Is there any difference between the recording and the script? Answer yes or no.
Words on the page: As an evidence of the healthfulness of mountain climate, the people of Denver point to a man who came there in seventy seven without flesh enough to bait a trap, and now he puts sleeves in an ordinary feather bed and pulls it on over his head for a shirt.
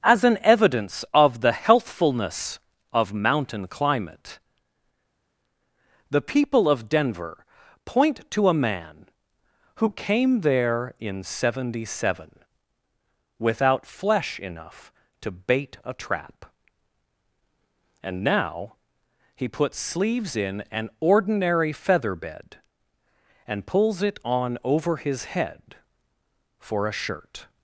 no